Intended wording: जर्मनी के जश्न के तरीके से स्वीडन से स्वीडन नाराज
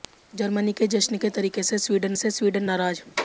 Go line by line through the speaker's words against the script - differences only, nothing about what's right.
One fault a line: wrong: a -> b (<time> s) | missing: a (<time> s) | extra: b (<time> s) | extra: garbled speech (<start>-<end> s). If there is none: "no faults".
no faults